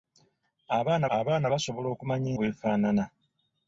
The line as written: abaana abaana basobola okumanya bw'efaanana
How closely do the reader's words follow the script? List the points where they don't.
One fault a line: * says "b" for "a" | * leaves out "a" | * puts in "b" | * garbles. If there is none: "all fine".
all fine